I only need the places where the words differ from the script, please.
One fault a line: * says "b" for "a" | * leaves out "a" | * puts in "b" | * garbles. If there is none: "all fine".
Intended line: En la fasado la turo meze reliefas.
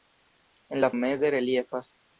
* leaves out "fasado la turo"